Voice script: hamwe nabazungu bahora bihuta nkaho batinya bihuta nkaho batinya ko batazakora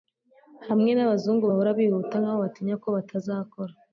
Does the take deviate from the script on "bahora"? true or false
false